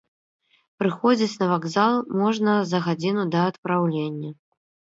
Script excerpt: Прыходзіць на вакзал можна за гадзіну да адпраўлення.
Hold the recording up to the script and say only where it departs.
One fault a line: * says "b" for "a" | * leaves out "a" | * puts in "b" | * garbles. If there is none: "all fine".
all fine